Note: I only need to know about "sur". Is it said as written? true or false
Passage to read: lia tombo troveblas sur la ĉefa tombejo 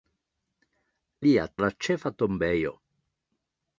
false